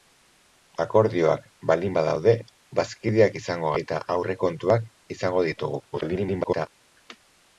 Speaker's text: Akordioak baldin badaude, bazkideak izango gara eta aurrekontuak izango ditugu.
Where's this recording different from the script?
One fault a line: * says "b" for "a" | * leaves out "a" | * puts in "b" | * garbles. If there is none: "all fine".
* leaves out "gara"
* garbles